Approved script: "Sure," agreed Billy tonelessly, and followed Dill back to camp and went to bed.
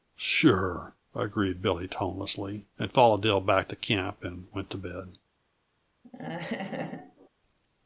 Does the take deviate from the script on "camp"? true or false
false